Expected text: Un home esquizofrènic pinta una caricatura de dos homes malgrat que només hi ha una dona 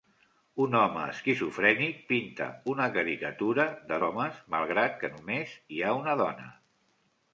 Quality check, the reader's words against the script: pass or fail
fail